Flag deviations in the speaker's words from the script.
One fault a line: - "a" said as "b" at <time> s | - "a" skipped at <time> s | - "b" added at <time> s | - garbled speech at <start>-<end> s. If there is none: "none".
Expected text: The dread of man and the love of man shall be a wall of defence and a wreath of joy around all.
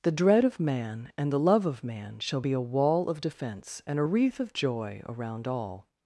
none